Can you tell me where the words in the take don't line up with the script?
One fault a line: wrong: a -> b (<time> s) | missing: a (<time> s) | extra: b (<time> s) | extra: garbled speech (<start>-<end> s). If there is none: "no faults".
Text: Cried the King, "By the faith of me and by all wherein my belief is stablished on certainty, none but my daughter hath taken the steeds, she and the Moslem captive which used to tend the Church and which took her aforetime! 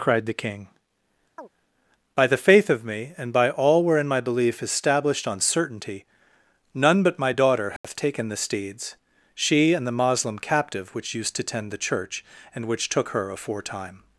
no faults